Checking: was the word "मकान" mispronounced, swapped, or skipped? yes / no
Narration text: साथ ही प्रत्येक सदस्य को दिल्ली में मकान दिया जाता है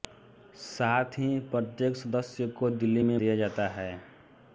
yes